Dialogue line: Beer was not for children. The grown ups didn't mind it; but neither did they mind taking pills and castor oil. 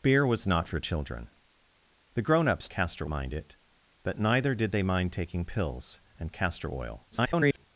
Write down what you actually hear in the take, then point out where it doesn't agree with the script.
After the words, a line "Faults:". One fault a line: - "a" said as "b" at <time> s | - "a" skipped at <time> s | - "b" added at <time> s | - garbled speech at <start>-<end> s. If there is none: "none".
Beer was not for children. The grown ups castor mind it; but neither did they mind taking pills and castor oil. [garbled]
Faults:
- "didn't" said as "castor" at 2.7 s
- garbled speech at 7.1-7.7 s